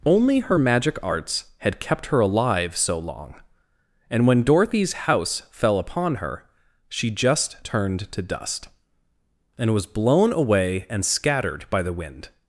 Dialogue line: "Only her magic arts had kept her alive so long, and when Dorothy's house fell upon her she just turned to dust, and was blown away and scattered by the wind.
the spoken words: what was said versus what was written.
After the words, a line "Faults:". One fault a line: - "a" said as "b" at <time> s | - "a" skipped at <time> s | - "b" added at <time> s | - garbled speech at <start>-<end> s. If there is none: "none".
"Only her magic arts had kept her alive so long, and when Dorothy's house fell upon her she just turned to dust, and was blown away and scattered by the wind.
Faults:
none